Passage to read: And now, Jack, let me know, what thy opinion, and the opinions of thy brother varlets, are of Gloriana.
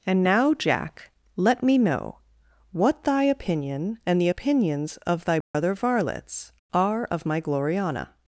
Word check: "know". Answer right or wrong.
right